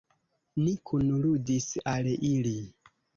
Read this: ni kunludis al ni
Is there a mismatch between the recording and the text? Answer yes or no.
yes